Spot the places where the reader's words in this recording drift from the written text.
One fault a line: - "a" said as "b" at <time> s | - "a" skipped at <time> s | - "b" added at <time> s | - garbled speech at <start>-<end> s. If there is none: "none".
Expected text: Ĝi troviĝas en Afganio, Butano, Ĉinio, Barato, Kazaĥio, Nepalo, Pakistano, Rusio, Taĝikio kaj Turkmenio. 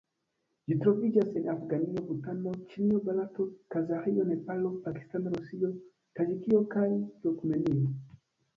none